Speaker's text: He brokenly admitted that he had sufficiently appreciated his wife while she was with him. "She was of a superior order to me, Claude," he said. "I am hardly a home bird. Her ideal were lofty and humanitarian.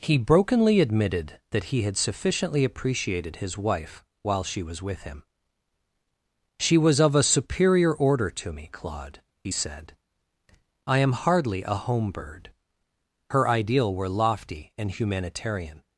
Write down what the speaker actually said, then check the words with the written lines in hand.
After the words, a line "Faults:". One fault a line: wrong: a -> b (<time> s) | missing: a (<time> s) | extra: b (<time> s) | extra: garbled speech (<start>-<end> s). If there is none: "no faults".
He brokenly admitted that he had sufficiently appreciated his wife while she was with him. "She was of a superior order to me, Claude," he said. "I am hardly a home bird. Her ideal were lofty and humanitarian.
Faults:
no faults